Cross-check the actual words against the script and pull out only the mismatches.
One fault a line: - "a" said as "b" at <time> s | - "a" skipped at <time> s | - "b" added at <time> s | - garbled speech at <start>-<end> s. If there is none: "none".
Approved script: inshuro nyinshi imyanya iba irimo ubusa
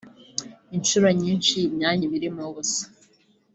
none